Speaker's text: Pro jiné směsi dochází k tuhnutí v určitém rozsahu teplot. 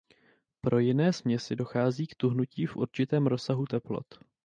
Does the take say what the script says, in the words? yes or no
yes